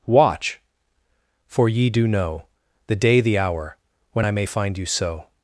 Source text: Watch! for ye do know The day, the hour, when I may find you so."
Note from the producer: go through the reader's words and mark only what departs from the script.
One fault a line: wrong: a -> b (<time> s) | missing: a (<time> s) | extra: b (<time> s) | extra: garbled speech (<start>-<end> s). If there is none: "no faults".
no faults